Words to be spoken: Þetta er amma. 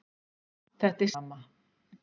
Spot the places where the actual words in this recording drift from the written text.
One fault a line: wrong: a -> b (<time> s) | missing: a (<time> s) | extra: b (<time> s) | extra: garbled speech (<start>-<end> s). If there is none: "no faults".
no faults